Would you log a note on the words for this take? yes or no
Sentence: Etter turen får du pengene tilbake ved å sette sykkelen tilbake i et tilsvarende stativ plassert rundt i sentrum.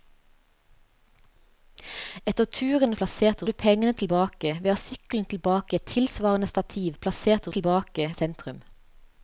yes